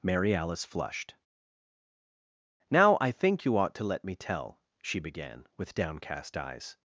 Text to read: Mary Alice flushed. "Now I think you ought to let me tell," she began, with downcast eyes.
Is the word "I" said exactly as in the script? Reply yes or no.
yes